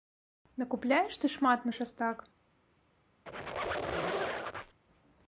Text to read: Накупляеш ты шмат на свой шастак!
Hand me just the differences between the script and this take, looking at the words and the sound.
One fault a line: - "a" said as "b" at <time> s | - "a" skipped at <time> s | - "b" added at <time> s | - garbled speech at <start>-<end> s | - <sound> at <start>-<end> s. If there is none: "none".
- "свой" skipped at 1.7 s
- squeak at 3.3-4.8 s